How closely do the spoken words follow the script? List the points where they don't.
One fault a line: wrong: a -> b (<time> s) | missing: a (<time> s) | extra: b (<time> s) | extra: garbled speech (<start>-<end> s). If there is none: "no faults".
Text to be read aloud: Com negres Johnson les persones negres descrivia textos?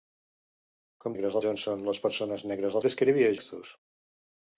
no faults